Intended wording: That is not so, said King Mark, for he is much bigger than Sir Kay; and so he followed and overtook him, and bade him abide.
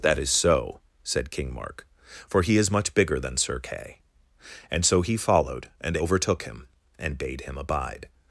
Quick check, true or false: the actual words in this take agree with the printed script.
false